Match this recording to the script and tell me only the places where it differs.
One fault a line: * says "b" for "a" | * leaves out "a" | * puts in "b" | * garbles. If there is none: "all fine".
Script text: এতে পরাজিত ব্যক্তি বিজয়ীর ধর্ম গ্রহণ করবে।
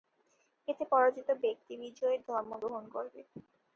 all fine